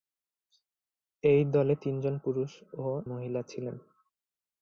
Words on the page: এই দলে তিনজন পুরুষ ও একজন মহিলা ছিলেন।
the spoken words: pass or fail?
fail